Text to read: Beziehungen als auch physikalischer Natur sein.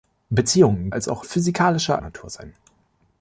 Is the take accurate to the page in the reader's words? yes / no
yes